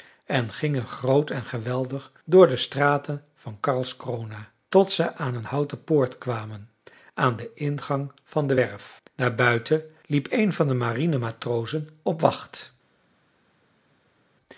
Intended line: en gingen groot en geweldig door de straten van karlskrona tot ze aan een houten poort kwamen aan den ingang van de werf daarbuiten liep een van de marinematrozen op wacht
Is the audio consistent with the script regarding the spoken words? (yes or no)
yes